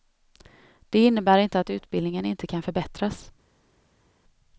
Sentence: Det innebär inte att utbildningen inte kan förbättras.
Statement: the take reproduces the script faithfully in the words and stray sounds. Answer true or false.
true